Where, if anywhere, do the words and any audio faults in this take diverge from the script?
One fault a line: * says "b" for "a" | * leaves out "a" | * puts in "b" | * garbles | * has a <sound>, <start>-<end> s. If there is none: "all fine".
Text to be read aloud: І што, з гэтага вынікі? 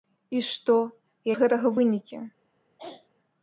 * has a throat clearing, 2.8-3.1 s